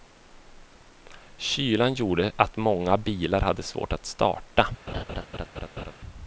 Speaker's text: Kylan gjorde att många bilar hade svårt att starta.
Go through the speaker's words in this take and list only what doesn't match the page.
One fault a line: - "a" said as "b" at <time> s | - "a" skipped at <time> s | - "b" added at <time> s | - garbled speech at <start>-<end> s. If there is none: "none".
none